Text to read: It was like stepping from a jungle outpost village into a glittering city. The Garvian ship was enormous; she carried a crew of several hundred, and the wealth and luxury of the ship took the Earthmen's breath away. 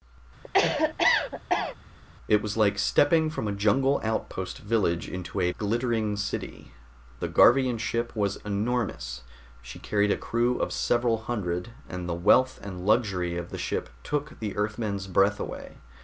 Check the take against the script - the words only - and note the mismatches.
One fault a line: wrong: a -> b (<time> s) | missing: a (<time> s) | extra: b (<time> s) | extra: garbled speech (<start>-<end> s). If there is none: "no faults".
no faults